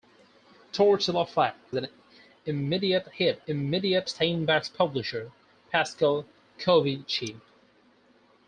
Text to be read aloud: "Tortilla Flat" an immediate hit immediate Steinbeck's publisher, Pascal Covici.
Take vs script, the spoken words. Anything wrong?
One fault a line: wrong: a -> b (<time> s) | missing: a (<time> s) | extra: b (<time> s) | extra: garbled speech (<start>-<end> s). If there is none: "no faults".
no faults